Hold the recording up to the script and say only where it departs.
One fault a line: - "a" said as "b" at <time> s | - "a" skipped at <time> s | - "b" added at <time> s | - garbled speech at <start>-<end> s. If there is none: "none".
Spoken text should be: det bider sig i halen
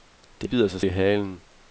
none